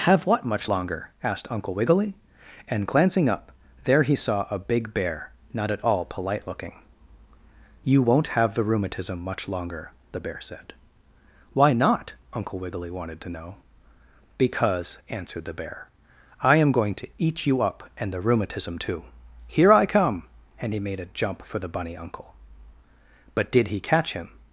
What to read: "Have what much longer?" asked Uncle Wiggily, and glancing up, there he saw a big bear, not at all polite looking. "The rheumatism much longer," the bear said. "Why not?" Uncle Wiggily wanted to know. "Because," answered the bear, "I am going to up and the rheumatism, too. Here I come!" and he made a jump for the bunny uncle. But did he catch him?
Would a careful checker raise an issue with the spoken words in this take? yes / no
yes